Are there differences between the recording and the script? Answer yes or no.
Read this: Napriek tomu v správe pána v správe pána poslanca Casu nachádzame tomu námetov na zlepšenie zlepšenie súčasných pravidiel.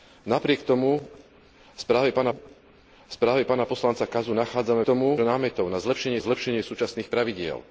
no